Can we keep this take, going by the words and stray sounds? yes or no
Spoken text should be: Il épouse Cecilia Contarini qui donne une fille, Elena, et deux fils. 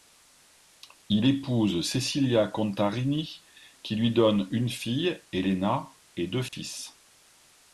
no